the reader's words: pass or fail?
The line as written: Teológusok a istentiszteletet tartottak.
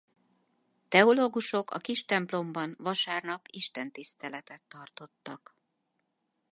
fail